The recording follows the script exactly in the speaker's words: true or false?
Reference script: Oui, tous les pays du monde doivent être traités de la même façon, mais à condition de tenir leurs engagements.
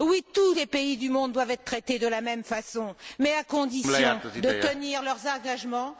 true